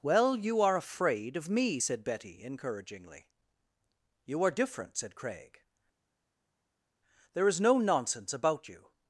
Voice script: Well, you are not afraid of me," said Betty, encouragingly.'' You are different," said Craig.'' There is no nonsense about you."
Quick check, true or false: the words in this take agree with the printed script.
false